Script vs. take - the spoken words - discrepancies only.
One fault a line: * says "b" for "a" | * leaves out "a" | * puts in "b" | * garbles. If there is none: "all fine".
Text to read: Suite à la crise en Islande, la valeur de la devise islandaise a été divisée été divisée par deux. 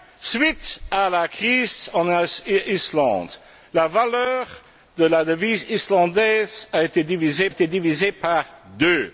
all fine